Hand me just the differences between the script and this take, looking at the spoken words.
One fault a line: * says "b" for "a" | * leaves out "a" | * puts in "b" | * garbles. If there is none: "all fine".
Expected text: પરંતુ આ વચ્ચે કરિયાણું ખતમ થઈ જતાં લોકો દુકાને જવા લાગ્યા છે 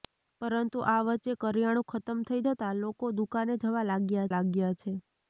* puts in "લાગ્યા"